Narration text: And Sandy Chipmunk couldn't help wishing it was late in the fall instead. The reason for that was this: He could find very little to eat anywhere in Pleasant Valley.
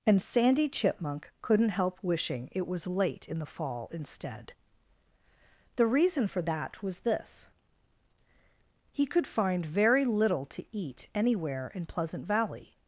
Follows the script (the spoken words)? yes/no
yes